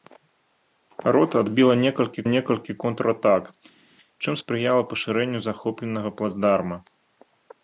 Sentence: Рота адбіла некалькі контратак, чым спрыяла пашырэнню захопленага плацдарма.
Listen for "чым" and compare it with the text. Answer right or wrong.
right